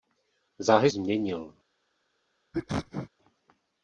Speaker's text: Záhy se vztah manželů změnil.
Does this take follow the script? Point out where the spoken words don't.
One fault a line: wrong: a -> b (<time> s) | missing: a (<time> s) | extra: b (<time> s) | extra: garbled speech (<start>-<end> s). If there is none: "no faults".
missing: se vztah manželů (0.9 s)